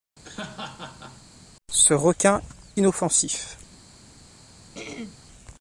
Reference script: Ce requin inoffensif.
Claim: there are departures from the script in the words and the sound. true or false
true